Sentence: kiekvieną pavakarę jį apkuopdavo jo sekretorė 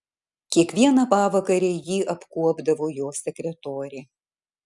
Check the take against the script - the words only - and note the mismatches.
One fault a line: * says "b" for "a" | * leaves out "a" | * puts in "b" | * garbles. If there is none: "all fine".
all fine